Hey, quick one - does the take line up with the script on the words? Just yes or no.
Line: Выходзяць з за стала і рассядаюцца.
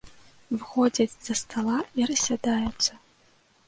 yes